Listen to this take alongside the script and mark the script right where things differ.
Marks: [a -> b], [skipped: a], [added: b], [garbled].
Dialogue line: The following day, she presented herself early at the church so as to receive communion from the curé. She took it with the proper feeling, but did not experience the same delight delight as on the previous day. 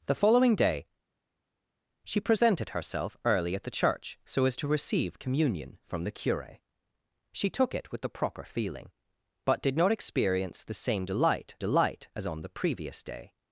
The following day, she presented herself early at the church so as to receive communion from the curé. She took it with the proper feeling, but did not experience the same delight delight as on the previous day.